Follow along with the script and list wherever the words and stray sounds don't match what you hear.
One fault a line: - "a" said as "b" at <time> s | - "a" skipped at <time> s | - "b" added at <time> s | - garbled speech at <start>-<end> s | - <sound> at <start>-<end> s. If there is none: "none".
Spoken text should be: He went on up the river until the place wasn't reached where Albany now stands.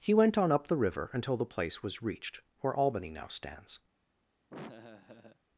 - "wasn't" said as "was" at 1.8 s
- laugh at 4.5-5.4 s